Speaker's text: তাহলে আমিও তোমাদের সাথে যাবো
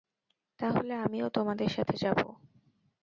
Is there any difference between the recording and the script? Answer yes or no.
no